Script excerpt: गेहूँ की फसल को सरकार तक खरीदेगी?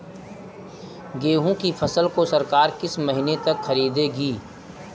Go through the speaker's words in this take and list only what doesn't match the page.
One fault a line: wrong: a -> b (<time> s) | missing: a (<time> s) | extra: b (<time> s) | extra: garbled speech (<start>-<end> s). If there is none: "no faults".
extra: किस महीने (2.8 s)